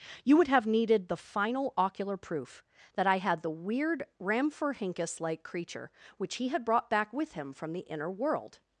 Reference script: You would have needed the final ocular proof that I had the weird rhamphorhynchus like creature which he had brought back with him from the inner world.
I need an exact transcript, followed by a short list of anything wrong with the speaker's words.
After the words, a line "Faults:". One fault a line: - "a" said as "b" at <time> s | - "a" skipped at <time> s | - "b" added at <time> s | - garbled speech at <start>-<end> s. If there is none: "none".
You would have needed the final ocular proof that I had the weird rhamphorhynchus like creature which he had brought back with him from the inner world.
Faults:
none